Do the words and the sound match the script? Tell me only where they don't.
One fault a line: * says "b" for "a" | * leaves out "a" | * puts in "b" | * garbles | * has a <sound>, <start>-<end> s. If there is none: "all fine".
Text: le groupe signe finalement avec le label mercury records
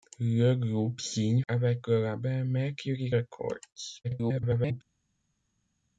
* leaves out "finalement"
* garbles